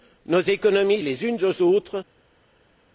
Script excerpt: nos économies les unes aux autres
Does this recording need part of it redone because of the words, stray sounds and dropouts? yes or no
no